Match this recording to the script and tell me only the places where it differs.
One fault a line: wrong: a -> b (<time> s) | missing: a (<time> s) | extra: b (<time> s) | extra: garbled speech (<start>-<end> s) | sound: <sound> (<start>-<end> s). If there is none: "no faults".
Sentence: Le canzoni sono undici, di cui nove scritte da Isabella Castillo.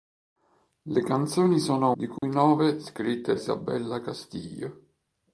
missing: undici (1.9 s)
sound: dropout (2.2-2.2 s)
missing: da (3.4 s)